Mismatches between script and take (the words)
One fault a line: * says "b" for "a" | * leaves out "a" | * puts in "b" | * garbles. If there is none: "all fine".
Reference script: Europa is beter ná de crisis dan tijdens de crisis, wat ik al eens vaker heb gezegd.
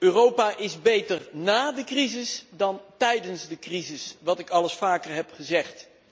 all fine